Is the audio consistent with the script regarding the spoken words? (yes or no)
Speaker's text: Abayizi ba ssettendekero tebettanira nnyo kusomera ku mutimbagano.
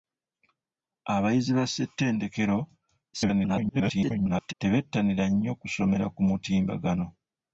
no